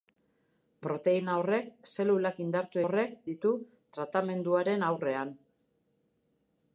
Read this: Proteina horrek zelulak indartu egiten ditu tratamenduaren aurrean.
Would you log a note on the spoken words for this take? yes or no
yes